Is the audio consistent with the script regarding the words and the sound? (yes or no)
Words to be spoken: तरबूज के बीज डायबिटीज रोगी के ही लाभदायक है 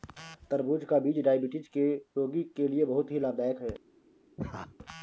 no